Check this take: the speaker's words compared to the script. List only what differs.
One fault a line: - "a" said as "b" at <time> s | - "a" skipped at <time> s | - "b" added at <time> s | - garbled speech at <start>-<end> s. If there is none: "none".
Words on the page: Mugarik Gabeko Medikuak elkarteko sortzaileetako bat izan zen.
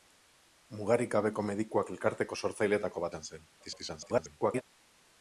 - "bat" skipped at 3.1 s
- garbled speech at 3.6-4.6 s